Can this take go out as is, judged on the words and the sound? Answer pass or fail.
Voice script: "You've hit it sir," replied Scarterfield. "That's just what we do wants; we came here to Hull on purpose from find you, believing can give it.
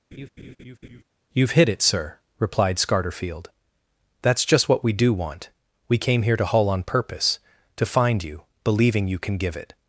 fail